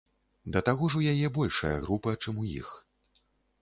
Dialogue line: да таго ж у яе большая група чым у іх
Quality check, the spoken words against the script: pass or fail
pass